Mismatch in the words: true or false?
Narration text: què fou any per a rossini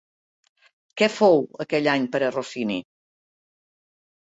true